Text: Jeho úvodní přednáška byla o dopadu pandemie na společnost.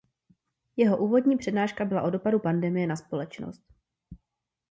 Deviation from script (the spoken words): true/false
false